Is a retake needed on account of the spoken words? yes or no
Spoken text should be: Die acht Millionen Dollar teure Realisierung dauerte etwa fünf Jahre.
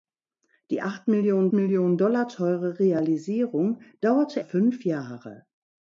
yes